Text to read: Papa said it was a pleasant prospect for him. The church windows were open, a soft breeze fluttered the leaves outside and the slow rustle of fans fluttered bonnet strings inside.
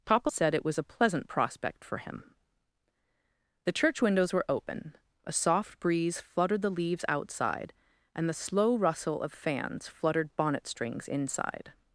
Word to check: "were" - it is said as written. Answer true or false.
true